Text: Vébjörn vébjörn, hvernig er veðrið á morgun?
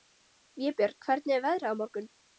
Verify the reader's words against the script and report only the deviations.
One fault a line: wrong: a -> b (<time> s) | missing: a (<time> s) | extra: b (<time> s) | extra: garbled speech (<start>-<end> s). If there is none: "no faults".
missing: vébjörn (1.0 s)